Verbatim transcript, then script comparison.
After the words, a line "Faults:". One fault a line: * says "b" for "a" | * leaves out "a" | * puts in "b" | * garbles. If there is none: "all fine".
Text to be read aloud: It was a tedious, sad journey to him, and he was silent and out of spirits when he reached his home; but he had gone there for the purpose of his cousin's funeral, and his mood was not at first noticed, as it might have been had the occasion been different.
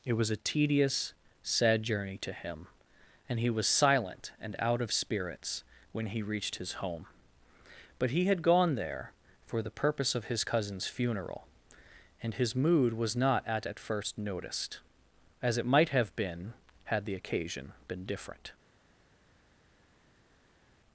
It was a tedious, sad journey to him, and he was silent and out of spirits when he reached his home; but he had gone there for the purpose of his cousin's funeral, and his mood was not at at first noticed, as it might have been had the occasion been different.
Faults:
* puts in "at"